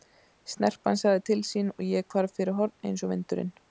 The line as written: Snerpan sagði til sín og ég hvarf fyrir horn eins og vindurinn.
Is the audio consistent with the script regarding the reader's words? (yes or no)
yes